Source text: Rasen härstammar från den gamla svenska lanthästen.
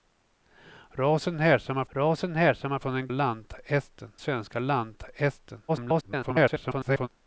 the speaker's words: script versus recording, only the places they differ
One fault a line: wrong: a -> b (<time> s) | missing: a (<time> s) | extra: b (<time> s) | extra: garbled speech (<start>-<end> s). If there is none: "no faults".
extra: rasen härstammar (1.9 s)
wrong: gamla -> lanthästen (3.1 s)
extra: garbled speech (5.7-7.1 s)